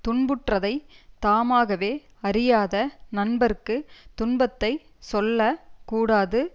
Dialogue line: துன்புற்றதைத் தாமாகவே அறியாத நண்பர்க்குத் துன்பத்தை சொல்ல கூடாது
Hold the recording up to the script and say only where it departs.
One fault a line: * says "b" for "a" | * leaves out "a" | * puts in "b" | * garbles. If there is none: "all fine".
all fine